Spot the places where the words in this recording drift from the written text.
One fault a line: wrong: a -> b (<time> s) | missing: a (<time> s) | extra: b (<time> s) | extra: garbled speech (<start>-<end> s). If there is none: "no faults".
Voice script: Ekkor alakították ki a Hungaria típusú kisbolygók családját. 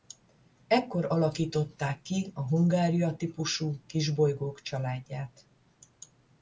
no faults